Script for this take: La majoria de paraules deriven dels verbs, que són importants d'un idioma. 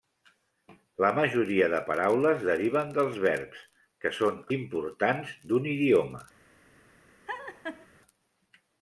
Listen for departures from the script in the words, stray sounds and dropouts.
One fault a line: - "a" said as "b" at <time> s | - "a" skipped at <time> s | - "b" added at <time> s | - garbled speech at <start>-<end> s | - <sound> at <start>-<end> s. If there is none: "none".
- laugh at 7.3-7.9 s